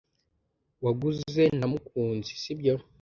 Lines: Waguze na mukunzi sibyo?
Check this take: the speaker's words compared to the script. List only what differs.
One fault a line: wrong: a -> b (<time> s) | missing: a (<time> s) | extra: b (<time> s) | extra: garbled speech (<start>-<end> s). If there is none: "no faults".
no faults